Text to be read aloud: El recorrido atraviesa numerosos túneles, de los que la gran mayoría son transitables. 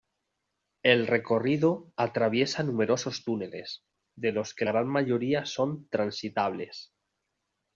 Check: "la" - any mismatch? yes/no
yes